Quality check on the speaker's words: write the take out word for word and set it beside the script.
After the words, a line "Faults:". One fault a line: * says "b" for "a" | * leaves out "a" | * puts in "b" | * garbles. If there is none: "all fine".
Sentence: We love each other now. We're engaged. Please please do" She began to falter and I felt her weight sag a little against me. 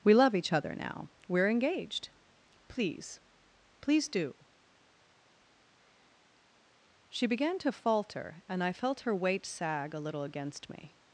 We love each other now. We're engaged. Please please do" She began to falter and I felt her weight sag a little against me.
Faults:
all fine